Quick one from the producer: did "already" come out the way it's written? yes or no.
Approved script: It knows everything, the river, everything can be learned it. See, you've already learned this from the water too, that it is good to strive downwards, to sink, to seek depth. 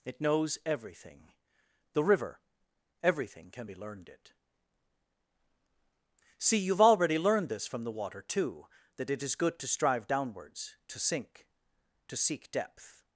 yes